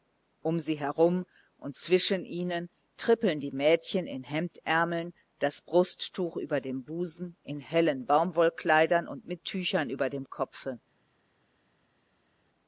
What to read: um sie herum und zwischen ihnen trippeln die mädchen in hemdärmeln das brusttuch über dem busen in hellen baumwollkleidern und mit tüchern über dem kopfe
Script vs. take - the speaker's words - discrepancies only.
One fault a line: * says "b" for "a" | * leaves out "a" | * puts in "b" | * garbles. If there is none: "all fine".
all fine